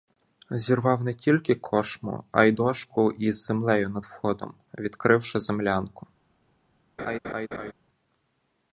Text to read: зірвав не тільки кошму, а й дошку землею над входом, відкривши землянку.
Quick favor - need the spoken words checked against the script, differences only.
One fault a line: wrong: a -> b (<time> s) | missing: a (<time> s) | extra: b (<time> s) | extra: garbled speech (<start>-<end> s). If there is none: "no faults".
extra: із (3.1 s)